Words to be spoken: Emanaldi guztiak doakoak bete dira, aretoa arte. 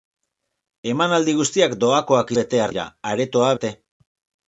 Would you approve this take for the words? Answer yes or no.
yes